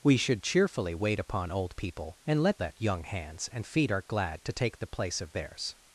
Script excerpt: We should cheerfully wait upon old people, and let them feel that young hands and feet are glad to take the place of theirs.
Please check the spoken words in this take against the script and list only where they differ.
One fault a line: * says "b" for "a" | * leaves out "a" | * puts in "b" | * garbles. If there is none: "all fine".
* leaves out "them feel"